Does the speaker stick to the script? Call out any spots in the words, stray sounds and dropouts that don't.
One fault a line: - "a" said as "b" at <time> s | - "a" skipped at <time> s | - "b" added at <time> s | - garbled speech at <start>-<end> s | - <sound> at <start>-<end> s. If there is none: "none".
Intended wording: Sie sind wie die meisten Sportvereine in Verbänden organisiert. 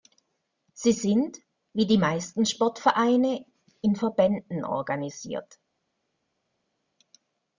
none